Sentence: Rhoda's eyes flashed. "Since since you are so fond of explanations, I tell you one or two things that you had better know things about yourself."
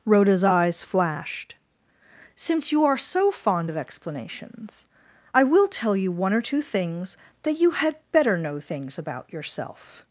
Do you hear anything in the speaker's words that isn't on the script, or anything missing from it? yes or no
yes